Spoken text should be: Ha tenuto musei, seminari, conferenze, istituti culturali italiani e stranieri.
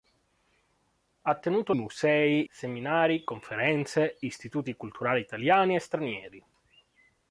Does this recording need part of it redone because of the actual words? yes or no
no